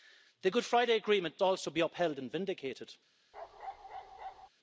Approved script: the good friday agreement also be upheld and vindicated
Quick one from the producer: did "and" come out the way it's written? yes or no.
yes